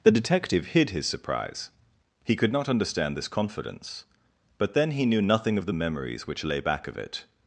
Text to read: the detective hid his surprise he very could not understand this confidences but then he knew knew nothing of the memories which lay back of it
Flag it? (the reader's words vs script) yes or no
yes